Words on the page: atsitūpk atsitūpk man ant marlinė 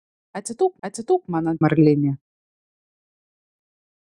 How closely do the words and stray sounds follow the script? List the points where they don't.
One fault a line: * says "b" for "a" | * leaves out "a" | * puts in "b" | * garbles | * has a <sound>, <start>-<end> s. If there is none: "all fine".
all fine